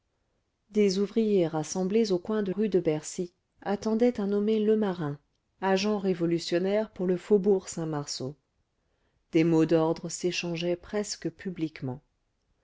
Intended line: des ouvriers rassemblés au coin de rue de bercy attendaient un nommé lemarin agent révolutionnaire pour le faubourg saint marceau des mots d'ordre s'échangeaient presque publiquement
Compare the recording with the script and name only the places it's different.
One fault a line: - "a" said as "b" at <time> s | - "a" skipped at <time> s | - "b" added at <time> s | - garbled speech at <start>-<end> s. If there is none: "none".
none